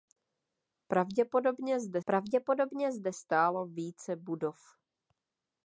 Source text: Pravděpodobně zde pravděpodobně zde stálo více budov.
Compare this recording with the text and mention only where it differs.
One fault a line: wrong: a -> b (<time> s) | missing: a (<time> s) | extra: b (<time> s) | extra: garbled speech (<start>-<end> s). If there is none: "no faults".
no faults